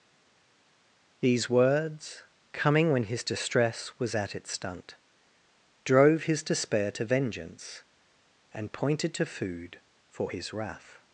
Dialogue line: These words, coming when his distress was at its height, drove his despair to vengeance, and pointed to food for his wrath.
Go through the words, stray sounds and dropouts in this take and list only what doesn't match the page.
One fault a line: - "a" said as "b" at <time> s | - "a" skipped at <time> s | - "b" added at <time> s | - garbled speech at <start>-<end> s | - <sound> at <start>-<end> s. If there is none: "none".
- "height" said as "stunt" at 4.5 s